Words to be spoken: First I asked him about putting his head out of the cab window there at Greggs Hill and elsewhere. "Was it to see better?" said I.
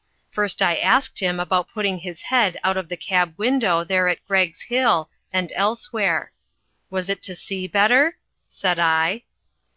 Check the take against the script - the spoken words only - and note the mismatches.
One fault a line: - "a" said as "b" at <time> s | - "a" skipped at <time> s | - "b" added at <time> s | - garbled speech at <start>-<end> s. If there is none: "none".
none